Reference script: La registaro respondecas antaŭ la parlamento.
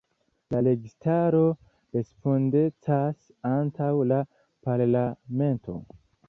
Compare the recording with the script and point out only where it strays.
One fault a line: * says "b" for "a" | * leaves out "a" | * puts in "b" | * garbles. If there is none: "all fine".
all fine